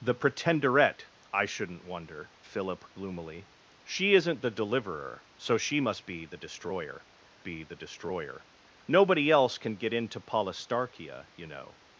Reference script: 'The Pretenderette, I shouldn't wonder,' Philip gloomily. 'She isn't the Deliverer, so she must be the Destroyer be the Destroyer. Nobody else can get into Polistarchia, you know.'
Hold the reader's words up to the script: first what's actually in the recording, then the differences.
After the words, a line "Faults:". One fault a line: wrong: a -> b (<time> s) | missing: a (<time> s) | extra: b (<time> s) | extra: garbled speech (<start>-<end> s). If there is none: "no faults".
'The Pretenderette, I shouldn't wonder,' Philip gloomily. 'She isn't the Deliverer, so she must be the Destroyer be the Destroyer. Nobody else can get into Polistarchia, you know.'
Faults:
no faults